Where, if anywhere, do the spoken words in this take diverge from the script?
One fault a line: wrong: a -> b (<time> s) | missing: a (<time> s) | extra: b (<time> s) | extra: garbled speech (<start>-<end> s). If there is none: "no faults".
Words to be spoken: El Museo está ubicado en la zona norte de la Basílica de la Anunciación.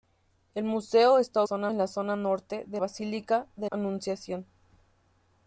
wrong: ubicado -> zona (1.4 s)
missing: la (2.8 s)
missing: la (3.7 s)